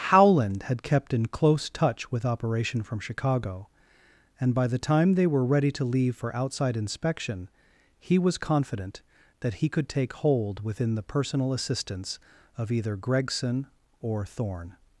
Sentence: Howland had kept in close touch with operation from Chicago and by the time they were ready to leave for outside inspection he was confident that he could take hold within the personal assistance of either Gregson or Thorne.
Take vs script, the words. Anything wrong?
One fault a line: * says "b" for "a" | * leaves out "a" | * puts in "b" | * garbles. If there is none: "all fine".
all fine